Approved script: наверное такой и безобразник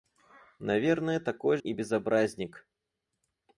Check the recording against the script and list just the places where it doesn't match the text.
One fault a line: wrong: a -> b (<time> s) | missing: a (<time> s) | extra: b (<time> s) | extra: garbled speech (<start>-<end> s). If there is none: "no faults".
no faults